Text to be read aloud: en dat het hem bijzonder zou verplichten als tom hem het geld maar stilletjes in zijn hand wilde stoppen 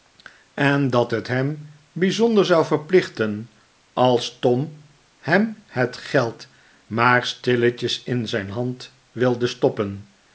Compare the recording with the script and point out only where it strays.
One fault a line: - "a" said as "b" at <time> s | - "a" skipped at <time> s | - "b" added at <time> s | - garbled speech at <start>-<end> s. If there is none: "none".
none